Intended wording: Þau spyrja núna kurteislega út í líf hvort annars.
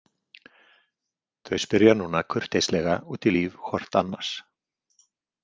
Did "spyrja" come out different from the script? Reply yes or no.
no